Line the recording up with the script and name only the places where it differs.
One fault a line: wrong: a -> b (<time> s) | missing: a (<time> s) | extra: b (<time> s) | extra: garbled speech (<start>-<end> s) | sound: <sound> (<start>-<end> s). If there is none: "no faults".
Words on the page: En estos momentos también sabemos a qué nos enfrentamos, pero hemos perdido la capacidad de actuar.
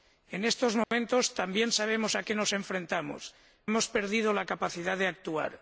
sound: dropout (0.8-0.9 s)
missing: pero (3.4 s)